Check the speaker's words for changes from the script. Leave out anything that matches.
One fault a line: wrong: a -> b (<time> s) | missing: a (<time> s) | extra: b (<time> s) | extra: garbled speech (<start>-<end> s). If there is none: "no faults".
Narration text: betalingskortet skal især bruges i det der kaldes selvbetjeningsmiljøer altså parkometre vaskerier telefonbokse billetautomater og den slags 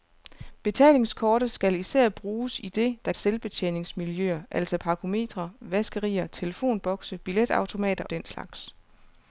missing: kaldes (3.1 s)
missing: og (8.0 s)